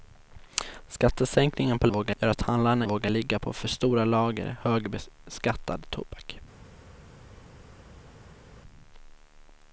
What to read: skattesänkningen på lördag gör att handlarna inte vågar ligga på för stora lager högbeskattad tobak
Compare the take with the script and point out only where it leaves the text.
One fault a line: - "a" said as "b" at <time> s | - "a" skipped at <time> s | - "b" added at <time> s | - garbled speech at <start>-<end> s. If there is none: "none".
- "lördag" said as "vågar" at 1.9 s
- "inte" skipped at 2.9 s